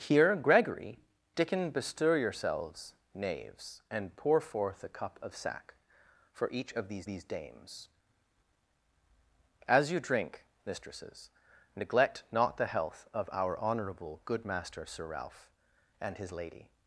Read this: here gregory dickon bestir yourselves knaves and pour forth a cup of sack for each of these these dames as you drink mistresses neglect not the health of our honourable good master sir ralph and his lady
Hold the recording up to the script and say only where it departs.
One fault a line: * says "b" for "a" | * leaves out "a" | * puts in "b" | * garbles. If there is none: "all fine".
all fine